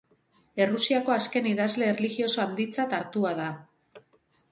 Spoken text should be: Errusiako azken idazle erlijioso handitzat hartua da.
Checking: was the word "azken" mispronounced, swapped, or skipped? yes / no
no